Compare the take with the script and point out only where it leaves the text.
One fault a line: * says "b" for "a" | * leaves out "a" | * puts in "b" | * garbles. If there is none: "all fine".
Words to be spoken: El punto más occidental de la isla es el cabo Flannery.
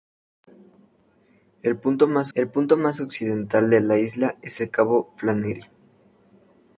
* puts in "el punto más"